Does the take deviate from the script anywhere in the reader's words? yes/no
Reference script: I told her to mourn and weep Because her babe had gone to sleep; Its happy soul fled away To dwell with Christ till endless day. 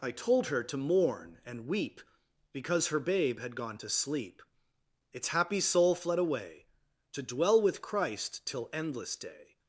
no